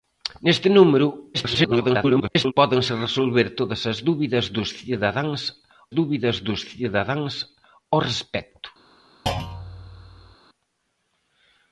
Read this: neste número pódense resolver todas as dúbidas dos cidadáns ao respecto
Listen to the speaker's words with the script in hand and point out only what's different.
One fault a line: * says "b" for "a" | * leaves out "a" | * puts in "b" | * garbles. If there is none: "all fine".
* garbles
* puts in "dúbidas dos cidadáns"